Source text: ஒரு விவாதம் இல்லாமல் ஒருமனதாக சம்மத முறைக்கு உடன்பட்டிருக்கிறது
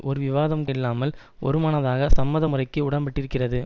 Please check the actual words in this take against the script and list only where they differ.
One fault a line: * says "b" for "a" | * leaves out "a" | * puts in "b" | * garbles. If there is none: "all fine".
all fine